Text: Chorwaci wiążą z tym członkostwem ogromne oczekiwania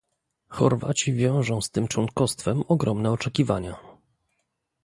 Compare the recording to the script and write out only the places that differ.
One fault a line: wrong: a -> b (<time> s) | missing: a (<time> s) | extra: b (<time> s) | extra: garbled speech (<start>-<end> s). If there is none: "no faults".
no faults